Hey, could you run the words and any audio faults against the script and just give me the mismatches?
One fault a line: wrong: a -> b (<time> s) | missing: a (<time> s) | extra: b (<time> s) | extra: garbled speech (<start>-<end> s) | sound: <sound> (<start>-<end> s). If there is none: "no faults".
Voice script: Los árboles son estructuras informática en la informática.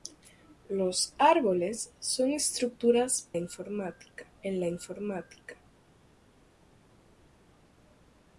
no faults